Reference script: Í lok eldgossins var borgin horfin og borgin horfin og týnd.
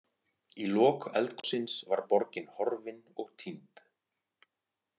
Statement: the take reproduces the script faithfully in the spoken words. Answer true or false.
false